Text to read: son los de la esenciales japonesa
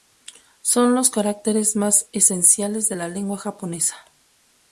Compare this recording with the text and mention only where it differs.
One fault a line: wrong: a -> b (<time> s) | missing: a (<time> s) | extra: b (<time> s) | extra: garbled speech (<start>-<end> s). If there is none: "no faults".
extra: caracteres más esenciales (1.1 s)
wrong: esenciales -> lengua (3.1 s)